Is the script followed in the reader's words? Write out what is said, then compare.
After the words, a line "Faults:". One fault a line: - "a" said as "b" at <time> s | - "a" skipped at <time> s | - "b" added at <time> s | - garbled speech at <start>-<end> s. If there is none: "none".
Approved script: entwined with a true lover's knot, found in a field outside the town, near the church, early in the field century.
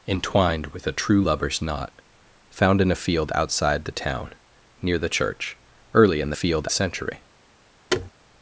entwined with a true lover's knot, found in a field outside the town, near the church, early in the field century.
Faults:
none